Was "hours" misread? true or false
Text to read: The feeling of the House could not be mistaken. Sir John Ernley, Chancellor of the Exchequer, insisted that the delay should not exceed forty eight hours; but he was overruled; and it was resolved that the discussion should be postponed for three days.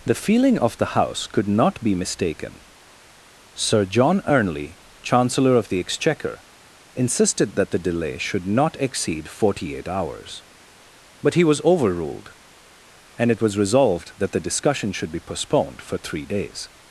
false